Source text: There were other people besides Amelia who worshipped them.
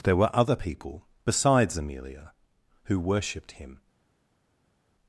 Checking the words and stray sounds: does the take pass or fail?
fail